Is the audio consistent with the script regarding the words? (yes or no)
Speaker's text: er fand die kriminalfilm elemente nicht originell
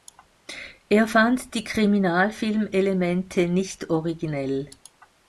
yes